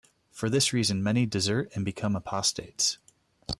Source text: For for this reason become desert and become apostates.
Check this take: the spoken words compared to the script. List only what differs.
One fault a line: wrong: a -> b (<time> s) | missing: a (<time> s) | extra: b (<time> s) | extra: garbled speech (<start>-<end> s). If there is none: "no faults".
missing: for (0.5 s)
wrong: become -> many (1.0 s)